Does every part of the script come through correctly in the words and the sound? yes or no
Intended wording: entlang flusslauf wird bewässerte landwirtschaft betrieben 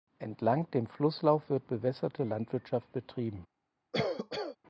no